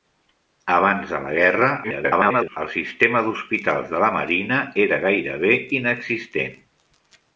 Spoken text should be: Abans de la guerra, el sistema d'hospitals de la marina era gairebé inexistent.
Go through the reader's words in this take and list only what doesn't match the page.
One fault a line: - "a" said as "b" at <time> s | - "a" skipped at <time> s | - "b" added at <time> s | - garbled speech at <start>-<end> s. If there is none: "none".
- garbled speech at 1.8-2.6 s